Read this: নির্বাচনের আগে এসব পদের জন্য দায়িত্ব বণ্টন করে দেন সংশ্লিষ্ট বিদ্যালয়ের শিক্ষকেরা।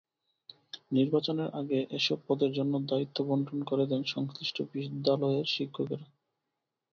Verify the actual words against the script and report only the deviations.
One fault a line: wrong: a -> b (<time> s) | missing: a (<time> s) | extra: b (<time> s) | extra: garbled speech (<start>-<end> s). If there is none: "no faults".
no faults